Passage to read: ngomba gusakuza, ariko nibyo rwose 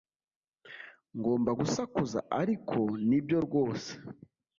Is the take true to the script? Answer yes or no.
yes